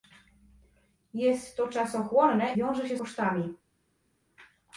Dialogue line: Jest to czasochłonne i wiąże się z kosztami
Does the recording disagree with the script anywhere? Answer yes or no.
yes